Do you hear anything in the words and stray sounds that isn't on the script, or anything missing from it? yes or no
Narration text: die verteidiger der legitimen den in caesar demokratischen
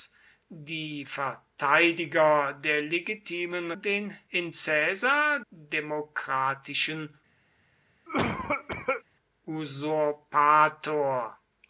yes